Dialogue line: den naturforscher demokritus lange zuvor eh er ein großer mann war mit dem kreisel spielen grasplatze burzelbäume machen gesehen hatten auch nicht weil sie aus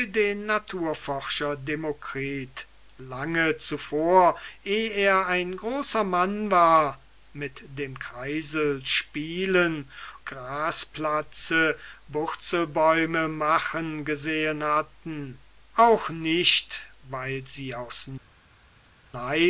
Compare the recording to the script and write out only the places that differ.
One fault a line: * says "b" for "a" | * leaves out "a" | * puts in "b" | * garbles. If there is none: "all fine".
all fine